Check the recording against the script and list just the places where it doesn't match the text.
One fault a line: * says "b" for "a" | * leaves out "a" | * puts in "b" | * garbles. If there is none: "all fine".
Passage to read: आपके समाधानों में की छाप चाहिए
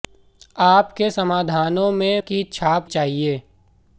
all fine